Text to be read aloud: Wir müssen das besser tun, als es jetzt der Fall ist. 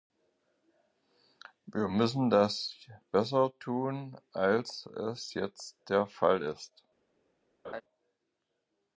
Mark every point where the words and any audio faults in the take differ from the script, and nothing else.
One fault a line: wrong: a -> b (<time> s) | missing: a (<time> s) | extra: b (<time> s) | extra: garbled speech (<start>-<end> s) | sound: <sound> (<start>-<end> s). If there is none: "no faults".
sound: laugh (7.6-7.8 s)